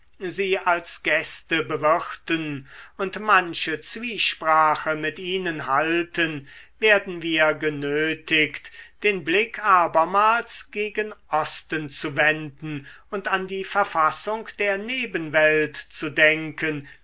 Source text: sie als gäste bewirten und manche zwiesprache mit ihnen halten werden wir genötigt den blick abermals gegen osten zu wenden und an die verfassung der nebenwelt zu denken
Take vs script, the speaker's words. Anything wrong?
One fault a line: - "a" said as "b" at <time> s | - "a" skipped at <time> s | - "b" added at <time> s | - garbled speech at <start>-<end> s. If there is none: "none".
none